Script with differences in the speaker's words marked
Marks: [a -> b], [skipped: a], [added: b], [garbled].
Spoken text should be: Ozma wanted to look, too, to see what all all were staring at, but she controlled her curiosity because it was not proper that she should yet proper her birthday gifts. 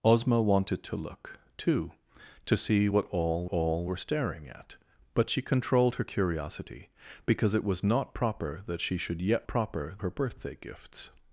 Ozma wanted to look, too, to see what all all were staring at, but she controlled her curiosity because it was not proper that she should yet proper her birthday gifts.